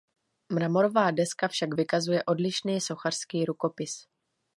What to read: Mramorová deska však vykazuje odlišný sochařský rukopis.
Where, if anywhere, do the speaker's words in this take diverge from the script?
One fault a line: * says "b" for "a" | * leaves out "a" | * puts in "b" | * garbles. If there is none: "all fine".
all fine